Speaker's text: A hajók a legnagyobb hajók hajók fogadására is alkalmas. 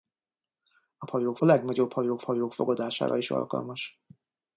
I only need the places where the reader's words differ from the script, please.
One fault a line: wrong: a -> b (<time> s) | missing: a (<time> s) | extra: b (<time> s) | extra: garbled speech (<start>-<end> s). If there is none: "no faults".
no faults